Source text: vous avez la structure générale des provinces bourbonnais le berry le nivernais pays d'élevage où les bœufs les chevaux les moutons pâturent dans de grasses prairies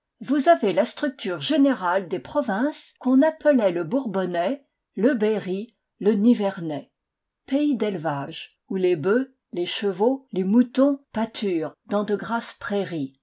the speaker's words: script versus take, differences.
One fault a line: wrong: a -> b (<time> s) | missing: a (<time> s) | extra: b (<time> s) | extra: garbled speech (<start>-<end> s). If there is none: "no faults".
extra: qu'on appelait le (3.0 s)